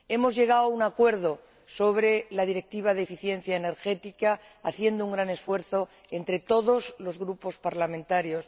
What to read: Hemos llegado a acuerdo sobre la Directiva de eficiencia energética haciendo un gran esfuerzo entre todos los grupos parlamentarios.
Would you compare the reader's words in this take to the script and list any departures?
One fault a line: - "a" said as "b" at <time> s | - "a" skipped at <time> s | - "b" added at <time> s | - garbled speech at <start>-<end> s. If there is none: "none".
- "un" added at 0.7 s